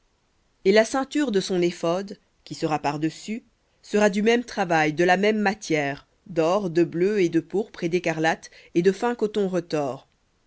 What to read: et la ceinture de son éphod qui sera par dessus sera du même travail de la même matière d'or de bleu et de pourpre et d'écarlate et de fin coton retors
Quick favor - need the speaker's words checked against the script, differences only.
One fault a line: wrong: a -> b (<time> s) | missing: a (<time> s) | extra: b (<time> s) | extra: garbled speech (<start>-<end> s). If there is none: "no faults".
no faults